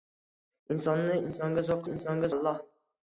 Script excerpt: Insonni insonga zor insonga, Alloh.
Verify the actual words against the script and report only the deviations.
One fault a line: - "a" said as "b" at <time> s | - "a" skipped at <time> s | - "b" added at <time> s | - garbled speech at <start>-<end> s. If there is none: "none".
none